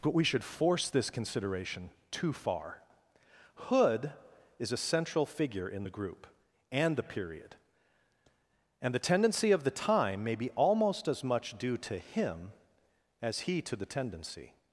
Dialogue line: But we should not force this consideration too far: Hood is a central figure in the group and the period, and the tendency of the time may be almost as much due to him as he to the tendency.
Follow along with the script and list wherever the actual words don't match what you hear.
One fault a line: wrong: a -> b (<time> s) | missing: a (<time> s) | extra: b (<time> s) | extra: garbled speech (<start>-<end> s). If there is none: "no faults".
missing: not (0.4 s)